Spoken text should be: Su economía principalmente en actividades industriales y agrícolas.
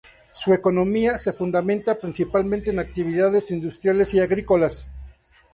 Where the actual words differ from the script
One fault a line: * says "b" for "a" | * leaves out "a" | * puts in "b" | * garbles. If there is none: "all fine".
* puts in "se fundamenta"